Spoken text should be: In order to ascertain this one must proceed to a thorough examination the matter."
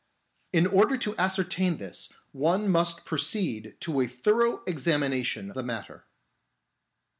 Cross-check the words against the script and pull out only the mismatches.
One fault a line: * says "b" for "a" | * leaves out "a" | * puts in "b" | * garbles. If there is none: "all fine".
all fine